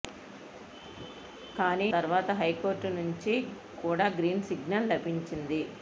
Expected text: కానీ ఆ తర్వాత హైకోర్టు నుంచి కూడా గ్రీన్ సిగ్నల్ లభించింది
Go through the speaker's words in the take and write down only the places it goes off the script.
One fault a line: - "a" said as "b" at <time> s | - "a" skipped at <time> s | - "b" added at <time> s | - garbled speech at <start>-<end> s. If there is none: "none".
- "ఆ" skipped at 1.9 s